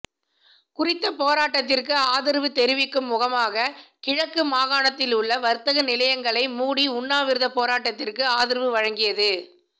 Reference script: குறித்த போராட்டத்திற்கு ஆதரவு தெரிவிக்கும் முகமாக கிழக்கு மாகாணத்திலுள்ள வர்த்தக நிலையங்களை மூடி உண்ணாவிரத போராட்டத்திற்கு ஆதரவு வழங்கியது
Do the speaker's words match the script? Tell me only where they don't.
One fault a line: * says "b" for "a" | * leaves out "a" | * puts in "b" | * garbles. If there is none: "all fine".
all fine